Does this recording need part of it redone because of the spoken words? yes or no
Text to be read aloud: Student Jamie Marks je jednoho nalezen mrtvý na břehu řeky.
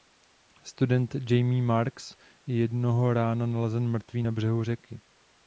yes